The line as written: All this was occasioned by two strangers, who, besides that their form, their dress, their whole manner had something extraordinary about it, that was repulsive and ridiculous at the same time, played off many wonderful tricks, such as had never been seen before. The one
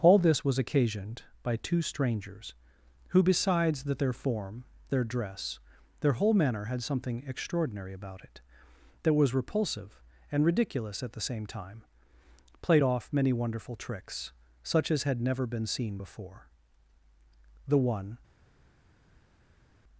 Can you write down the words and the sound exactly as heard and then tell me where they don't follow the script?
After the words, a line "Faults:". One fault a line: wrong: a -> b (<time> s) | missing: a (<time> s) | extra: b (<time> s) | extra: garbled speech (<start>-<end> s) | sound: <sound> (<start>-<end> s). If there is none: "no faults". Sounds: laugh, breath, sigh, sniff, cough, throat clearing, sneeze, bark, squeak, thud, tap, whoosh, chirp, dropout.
All this was occasioned by two strangers, who, besides that their form, their dress, their whole manner had something extraordinary about it, that was repulsive and ridiculous at the same time, played off many wonderful tricks, such as had never been seen before. The one
Faults:
no faults